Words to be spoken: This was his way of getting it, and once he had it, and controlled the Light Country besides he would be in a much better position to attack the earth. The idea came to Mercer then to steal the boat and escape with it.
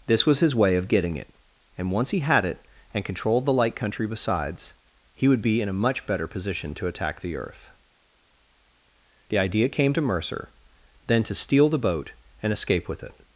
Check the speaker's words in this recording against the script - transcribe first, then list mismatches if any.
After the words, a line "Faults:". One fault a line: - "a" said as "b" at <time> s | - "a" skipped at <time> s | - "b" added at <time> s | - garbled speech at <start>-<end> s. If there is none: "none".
This was his way of getting it, and once he had it, and controlled the Light Country besides he would be in a much better position to attack the earth. The idea came to Mercer then to steal the boat and escape with it.
Faults:
none